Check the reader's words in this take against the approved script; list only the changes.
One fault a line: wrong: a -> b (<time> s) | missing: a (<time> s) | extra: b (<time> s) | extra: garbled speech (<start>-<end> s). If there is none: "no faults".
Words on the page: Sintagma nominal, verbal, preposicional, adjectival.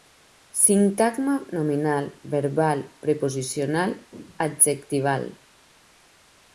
no faults